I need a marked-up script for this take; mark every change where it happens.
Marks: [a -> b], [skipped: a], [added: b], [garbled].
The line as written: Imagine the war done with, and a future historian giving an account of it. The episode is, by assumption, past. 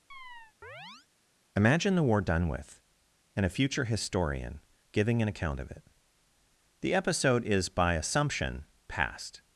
Imagine the war done with, and a future historian giving an account of it. The episode is, by assumption, past.